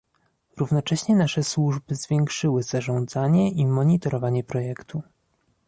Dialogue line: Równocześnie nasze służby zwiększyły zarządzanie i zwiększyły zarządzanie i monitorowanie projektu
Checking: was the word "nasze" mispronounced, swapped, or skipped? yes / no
no